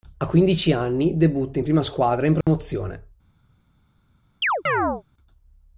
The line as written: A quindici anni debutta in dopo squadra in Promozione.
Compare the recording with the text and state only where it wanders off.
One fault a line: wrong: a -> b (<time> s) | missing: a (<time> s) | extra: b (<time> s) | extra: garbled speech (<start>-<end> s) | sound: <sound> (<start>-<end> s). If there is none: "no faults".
wrong: dopo -> prima (1.6 s)
sound: dropout (2.4-2.5 s)
sound: chirp (4.4-5.0 s)